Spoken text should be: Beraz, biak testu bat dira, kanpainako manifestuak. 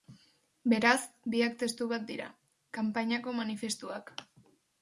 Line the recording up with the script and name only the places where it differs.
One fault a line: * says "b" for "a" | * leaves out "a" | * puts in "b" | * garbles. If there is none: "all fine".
all fine